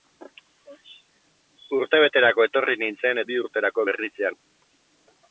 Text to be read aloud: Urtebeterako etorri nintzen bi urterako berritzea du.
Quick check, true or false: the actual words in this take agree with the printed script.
true